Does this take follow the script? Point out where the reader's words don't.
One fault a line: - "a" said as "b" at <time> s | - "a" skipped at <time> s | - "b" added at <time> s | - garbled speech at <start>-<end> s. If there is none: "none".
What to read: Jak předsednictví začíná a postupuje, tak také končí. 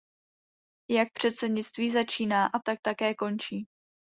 - "postupuje" skipped at 2.6 s